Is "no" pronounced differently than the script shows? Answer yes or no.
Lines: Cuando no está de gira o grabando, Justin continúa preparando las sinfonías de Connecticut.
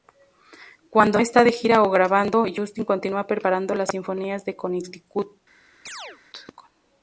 yes